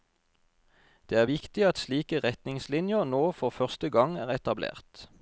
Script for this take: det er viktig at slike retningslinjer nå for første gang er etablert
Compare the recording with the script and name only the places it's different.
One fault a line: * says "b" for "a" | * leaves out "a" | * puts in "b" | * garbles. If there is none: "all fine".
all fine